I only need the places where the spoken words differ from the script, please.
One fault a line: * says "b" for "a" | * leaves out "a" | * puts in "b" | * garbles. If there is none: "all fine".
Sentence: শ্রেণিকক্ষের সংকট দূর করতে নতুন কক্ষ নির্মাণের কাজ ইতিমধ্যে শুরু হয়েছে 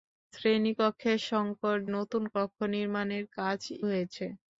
* leaves out "দূর করতে"
* leaves out "ইতিমধ্যে শুরু"